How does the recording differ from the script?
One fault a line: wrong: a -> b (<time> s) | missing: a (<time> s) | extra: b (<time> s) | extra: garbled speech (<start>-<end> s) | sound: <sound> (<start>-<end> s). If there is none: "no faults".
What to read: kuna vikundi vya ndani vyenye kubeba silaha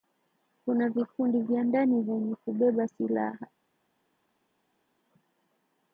no faults